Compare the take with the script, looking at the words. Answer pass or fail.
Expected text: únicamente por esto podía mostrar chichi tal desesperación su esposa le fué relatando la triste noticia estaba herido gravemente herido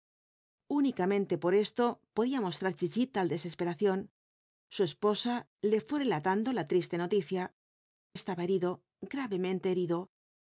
pass